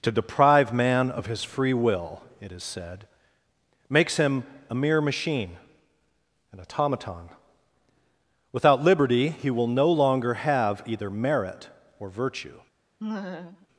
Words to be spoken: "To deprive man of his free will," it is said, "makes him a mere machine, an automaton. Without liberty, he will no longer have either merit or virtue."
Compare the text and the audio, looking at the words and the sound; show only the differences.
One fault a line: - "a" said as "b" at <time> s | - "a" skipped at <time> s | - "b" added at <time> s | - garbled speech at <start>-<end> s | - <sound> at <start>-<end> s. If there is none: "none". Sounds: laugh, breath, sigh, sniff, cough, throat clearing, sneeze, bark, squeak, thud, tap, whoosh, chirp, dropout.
- laugh at 13.0-13.7 s